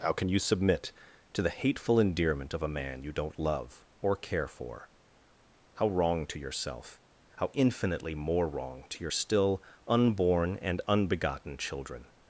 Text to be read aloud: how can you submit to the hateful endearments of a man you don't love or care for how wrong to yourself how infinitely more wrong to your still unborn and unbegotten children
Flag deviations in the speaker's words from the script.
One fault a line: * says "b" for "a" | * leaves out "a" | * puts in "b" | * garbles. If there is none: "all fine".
* says "endearment" for "endearments"